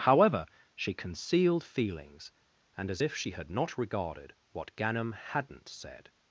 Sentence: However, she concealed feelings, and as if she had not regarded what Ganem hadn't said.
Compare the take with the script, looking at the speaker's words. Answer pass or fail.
pass